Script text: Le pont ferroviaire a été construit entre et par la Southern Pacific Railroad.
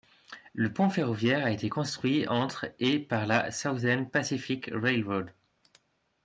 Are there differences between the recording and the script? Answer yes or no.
no